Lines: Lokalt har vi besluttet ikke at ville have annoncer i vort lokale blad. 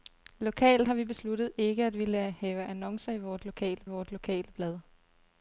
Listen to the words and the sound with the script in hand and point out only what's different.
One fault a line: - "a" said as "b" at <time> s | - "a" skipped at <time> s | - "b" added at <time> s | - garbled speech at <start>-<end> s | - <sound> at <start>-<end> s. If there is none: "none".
- "vort lokale" added at 3.8 s